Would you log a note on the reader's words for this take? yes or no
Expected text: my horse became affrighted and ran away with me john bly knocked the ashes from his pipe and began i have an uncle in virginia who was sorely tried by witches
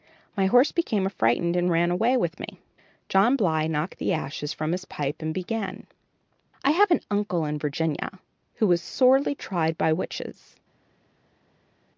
no